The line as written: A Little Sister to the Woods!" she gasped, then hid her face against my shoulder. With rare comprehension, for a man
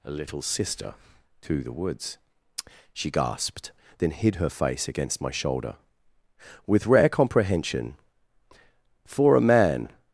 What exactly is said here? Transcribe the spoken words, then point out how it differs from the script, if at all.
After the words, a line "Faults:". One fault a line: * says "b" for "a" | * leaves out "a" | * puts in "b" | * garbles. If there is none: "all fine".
A Little Sister to the Woods!" she gasped, then hid her face against my shoulder. With rare comprehension, for a man
Faults:
all fine